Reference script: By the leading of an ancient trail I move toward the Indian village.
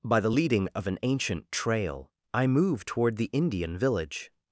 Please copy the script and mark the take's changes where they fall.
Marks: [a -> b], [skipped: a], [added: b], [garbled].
By the leading of an ancient trail I move toward the Indian village.